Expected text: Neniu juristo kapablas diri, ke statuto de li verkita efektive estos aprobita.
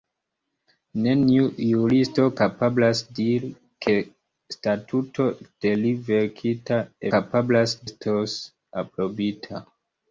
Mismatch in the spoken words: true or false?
true